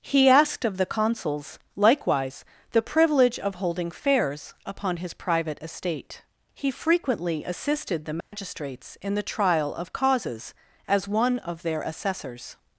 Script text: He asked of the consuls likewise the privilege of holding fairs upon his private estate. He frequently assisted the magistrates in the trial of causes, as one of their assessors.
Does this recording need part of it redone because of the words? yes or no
no